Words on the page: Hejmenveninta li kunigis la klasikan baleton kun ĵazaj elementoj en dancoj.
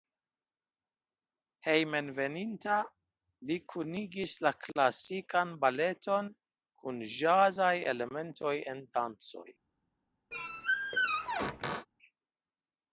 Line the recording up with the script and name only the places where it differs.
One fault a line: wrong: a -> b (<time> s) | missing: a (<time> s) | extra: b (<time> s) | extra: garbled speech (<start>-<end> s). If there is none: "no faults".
no faults